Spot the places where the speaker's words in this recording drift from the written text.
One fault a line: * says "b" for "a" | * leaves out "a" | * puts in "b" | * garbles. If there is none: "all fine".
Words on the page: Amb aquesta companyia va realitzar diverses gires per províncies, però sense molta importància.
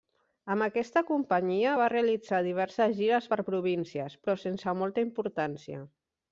all fine